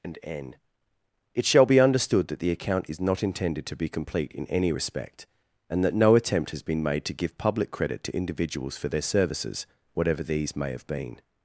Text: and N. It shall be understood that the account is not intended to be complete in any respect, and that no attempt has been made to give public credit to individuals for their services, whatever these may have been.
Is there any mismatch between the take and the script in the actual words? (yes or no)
no